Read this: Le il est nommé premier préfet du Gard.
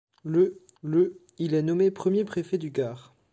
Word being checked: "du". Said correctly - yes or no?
yes